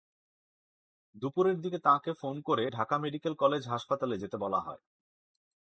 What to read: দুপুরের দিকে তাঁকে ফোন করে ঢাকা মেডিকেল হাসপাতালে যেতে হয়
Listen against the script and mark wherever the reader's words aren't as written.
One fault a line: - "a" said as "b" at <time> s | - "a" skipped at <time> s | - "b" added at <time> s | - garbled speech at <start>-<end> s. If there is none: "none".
- "কলেজ" added at 3.3 s
- "বলা" added at 4.4 s